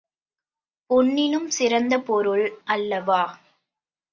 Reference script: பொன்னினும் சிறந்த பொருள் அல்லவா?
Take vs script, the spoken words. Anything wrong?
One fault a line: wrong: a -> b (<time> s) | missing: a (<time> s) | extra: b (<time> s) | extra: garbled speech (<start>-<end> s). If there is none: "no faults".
no faults